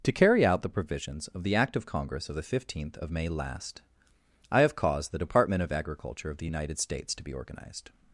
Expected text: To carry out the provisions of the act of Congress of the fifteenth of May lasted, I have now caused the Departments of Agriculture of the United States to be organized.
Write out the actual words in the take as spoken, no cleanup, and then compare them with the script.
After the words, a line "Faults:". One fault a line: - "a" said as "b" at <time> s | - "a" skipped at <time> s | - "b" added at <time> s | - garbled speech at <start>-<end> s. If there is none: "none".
To carry out the provisions of the act of Congress of the fifteenth of May last, I have caused the Department of Agriculture of the United States to be organized.
Faults:
- "lasted" said as "last" at 3.3 s
- "now" skipped at 4.8 s
- "Departments" said as "Department" at 5.2 s